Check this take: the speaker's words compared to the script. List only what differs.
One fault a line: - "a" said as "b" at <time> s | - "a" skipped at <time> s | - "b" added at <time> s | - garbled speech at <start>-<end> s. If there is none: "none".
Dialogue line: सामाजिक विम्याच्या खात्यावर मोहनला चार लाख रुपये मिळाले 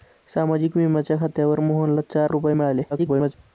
- "लाख" skipped at 2.3 s
- garbled speech at 2.9-3.3 s